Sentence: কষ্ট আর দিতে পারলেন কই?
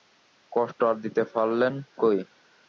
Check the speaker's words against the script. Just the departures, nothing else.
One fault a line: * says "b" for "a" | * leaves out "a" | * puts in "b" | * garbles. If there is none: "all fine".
all fine